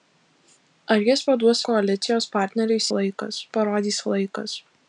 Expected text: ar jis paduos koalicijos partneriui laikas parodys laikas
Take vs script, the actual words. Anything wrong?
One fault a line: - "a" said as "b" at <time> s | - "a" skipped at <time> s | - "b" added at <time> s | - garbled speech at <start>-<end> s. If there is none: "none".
none